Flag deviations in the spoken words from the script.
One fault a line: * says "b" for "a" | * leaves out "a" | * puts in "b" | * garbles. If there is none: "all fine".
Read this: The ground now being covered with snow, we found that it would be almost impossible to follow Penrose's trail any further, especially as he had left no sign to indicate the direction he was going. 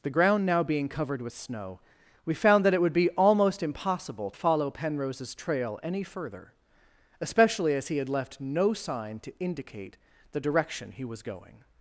* leaves out "to"